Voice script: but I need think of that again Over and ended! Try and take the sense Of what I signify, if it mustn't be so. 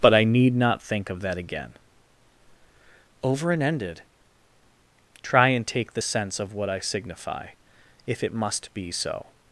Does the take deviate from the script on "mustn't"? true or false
true